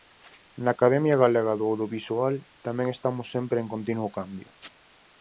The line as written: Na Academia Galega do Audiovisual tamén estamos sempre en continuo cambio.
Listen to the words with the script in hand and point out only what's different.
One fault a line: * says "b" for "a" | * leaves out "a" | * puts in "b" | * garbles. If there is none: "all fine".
all fine